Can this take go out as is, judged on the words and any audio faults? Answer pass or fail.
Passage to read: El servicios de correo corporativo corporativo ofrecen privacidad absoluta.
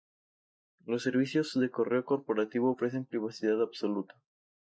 fail